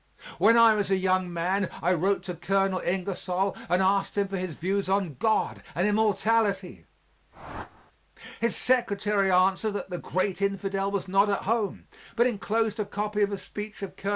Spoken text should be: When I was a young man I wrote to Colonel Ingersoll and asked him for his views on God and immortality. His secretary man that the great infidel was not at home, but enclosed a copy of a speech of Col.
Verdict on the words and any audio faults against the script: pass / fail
fail